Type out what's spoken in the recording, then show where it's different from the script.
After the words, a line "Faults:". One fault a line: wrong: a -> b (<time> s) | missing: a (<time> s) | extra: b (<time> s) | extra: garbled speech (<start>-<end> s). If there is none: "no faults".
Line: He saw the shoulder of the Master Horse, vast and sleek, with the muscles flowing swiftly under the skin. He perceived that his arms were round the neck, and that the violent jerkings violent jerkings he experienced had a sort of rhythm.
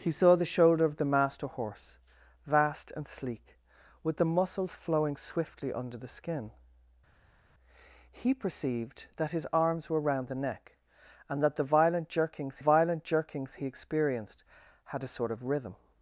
He saw the shoulder of the Master Horse, vast and sleek, with the muscles flowing swiftly under the skin. He perceived that his arms were round the neck, and that the violent jerkings violent jerkings he experienced had a sort of rhythm.
Faults:
no faults